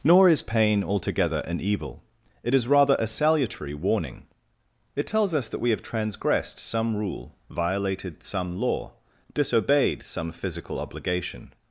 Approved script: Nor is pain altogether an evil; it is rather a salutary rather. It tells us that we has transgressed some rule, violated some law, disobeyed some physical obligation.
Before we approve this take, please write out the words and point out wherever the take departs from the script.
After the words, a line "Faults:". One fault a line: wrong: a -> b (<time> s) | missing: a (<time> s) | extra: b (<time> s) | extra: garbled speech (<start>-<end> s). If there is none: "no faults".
Nor is pain altogether an evil; it is rather a salutary warning. It tells us that we have transgressed some rule, violated some law, disobeyed some physical obligation.
Faults:
wrong: rather -> warning (3.8 s)
wrong: has -> have (5.7 s)